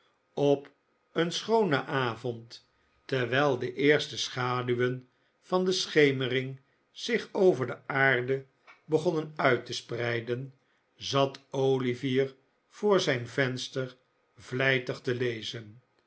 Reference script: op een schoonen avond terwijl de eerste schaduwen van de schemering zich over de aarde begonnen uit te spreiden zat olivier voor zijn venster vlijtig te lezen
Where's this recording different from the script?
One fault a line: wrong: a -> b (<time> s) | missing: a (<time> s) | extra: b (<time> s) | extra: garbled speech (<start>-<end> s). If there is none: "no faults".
no faults